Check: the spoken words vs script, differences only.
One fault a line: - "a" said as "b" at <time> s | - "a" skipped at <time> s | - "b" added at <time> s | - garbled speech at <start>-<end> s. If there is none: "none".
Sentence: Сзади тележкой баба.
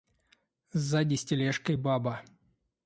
- "с" added at 1.1 s